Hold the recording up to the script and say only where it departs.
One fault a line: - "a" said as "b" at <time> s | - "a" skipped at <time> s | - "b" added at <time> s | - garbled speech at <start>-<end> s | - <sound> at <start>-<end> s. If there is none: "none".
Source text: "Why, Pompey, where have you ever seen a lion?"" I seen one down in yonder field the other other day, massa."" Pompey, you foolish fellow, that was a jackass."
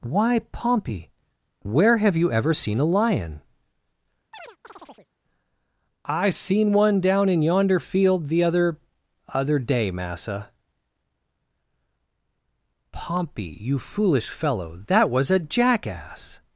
- chirp at 4.3-5.1 s